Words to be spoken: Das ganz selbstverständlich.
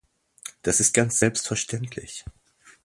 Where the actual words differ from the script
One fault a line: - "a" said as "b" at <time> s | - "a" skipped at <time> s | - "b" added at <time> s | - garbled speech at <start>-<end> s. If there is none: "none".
- "ist" added at 0.8 s